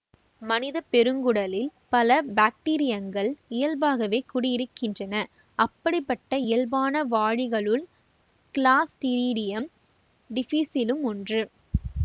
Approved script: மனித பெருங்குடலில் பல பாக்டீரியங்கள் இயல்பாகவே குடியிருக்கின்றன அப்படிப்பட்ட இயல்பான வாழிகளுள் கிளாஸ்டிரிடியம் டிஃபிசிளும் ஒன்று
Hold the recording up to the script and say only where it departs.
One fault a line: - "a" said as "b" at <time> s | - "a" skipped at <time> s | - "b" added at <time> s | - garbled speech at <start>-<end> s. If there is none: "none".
none